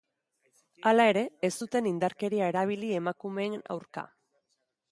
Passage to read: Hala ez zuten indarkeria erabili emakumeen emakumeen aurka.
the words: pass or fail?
fail